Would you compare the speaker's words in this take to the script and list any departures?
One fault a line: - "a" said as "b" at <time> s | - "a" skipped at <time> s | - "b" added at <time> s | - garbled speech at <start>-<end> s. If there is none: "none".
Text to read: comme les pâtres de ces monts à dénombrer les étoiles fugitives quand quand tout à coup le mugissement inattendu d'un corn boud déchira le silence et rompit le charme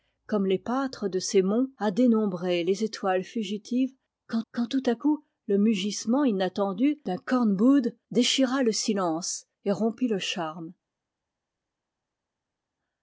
none